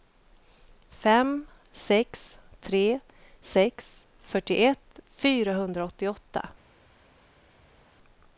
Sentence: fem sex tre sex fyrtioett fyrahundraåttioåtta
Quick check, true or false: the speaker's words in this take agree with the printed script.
true